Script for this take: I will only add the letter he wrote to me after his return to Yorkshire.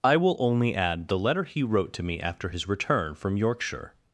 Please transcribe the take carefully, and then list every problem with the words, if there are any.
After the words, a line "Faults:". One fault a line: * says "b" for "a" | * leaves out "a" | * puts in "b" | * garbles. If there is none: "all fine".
I will only add the letter he wrote to me after his return from Yorkshire.
Faults:
* says "from" for "to"